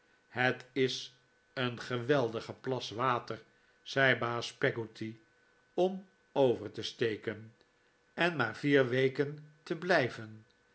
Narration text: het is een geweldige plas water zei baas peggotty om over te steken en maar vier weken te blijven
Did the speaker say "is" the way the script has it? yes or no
yes